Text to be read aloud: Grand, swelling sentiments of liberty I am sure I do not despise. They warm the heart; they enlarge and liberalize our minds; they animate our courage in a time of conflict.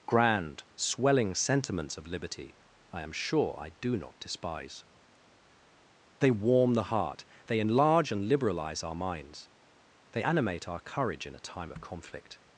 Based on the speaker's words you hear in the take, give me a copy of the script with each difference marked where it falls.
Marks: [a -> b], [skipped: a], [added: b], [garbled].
Grand, swelling sentiments of liberty I am sure I do not despise. They warm the heart; they enlarge and liberalize our minds; they animate our courage in a time of conflict.